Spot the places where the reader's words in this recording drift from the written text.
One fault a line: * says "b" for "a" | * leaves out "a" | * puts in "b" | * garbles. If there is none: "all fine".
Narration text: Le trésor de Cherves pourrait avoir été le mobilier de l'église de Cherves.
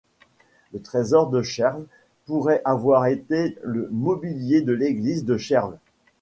all fine